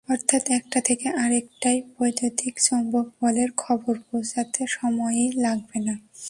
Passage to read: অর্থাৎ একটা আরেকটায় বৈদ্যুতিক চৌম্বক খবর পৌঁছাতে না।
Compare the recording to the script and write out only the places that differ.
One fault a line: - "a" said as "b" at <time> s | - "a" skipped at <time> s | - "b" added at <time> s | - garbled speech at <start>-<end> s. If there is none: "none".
- "থেকে" added at 0.8 s
- "বলের" added at 3.2 s
- "সময়ই লাগবে" added at 4.7 s